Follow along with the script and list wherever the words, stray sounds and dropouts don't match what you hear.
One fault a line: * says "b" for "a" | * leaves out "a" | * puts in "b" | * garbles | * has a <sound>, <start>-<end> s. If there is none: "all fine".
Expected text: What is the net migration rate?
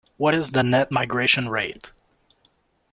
all fine